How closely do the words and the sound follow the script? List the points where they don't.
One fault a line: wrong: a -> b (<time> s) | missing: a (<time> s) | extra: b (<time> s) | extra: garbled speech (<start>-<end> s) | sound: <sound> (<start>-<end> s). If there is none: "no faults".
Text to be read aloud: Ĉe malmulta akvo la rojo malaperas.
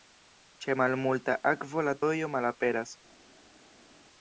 no faults